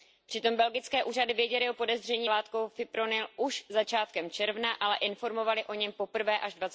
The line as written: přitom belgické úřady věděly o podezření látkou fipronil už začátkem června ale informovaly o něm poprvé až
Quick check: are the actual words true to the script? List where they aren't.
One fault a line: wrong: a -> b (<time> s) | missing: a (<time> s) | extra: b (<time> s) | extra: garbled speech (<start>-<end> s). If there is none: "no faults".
no faults